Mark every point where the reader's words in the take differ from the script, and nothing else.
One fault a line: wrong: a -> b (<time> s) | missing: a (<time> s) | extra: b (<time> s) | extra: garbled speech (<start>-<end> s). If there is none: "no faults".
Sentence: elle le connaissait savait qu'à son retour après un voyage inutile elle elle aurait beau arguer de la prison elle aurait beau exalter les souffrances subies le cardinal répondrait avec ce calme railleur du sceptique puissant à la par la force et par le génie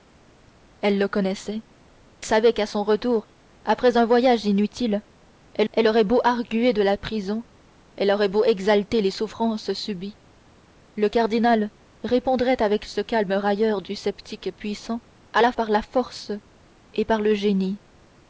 no faults